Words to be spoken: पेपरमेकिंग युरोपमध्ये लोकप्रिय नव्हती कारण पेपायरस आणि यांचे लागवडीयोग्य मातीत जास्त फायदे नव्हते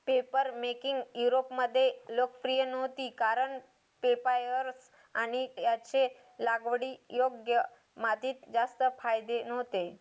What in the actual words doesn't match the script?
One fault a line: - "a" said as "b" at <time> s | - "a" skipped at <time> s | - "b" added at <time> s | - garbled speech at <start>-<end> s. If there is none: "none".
none